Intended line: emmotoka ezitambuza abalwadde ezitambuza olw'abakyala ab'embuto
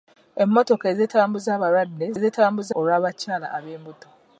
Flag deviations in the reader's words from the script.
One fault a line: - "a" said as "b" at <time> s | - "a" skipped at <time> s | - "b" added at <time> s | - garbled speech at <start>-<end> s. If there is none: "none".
none